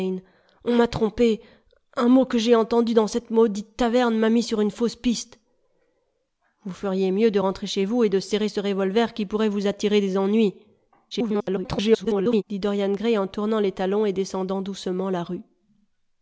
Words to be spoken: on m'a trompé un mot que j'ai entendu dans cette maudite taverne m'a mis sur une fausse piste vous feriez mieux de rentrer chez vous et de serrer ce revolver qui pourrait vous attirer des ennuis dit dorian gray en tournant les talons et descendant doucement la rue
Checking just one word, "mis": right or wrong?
right